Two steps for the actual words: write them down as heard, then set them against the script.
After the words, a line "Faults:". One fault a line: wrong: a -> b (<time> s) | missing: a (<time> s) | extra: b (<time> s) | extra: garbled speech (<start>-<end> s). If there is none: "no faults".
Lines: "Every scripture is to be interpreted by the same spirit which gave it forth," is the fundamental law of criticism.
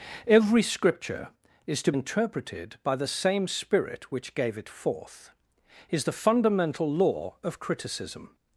"Every scripture is to interpreted by the same spirit which gave it forth," is the fundamental law of criticism.
Faults:
missing: be (1.9 s)